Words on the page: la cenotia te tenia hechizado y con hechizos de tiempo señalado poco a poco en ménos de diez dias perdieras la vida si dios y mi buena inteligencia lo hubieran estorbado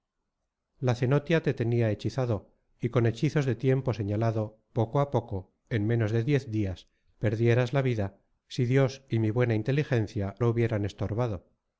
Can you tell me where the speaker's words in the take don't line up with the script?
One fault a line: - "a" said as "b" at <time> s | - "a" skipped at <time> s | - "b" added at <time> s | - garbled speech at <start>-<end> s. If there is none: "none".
none